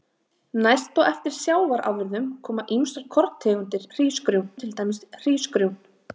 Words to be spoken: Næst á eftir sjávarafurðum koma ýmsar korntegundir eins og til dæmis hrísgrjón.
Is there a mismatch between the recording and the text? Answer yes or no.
yes